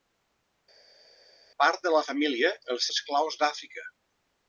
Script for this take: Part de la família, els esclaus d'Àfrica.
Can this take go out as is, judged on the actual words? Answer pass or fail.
pass